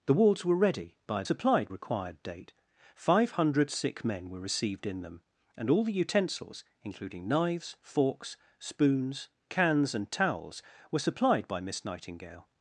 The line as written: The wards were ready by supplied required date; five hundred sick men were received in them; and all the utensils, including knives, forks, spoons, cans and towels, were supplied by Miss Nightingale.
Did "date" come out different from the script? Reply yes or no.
no